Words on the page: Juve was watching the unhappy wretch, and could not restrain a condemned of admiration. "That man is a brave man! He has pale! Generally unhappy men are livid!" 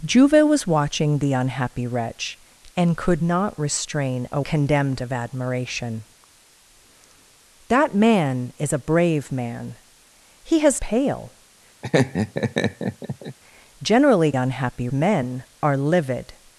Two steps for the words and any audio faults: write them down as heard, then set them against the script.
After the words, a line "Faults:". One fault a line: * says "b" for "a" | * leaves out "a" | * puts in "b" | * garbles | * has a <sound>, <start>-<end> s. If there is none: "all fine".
Juve was watching the unhappy wretch, and could not restrain a condemned of admiration. "That man is a brave man! He has pale! Generally unhappy men are livid!"
Faults:
* has a laugh, 11.8-13.4 s